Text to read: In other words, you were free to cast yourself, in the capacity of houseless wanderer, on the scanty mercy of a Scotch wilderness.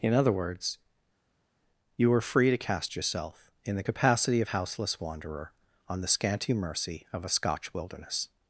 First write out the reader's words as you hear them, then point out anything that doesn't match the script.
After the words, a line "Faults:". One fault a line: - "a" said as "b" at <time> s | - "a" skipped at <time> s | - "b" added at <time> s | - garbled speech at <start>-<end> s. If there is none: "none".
In other words, you were free to cast yourself, in the capacity of houseless wanderer, on the scanty mercy of a Scotch wilderness.
Faults:
none